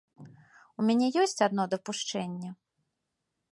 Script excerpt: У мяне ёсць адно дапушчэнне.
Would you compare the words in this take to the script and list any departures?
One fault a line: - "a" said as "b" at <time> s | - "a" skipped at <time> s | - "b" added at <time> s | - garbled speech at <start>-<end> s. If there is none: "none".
none